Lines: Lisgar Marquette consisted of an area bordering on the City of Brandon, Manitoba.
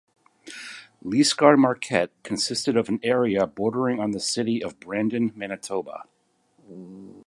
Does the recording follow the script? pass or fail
pass